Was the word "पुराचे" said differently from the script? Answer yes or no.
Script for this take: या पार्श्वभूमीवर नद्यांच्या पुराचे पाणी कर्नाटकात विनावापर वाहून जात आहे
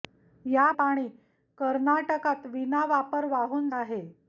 yes